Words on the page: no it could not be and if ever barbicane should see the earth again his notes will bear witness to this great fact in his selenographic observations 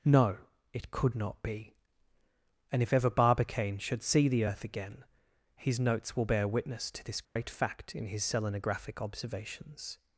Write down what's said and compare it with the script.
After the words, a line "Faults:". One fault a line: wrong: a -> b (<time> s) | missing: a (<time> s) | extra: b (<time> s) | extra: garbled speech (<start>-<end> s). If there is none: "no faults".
no it could not be and if ever barbicane should see the earth again his notes will bear witness to this great fact in his selenographic observations
Faults:
no faults